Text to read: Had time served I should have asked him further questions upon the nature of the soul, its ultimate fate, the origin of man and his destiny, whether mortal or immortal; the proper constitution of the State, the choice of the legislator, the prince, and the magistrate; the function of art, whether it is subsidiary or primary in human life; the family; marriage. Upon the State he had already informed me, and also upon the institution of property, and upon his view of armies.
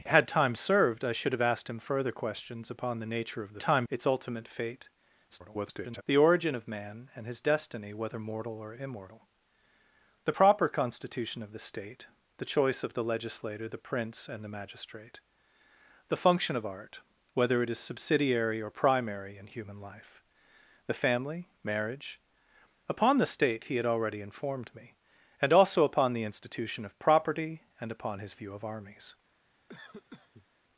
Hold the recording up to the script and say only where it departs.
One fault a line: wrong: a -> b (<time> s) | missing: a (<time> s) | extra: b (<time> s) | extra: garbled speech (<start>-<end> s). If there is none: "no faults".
wrong: soul -> time (3.6 s)
extra: garbled speech (5.3-6.0 s)